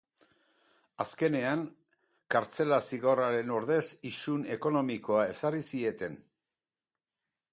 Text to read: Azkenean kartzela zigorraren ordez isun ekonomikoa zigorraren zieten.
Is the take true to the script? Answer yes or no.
no